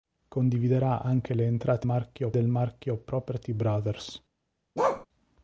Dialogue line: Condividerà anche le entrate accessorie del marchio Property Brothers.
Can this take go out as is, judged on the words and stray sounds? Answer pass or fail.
fail